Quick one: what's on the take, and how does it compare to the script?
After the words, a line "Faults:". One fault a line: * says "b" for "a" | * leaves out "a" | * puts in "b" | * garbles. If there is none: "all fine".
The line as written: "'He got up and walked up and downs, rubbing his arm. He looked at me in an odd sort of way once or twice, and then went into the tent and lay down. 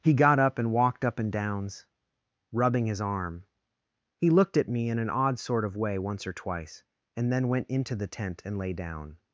"'He got up and walked up and downs, rubbing his arm. He looked at me in an odd sort of way once or twice, and then went into the tent and lay down.
Faults:
all fine